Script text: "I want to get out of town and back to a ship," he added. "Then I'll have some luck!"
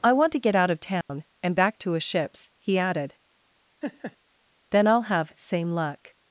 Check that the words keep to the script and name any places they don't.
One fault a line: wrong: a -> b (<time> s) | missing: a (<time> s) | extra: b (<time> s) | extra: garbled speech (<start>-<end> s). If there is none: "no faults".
wrong: ship -> ships (2.0 s)
wrong: some -> same (5.4 s)